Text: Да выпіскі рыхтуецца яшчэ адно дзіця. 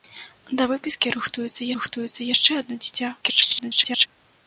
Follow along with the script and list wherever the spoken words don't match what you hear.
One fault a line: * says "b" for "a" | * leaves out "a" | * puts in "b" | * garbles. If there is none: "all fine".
* puts in "рыхтуецца"
* garbles